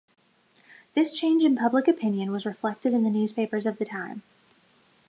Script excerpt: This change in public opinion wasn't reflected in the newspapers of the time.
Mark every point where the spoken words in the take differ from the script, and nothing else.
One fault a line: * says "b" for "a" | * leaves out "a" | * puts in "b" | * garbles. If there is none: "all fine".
* says "was" for "wasn't"